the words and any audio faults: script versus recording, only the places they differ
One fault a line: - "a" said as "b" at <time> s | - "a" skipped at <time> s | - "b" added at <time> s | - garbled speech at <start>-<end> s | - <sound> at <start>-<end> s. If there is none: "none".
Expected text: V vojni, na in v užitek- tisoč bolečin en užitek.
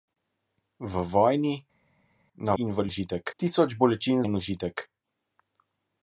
none